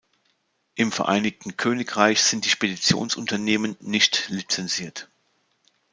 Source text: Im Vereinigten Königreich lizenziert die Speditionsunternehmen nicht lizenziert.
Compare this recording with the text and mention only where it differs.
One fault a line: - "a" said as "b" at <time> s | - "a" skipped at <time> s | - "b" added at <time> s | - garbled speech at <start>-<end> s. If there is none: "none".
- "lizenziert" said as "sind" at 2.2 s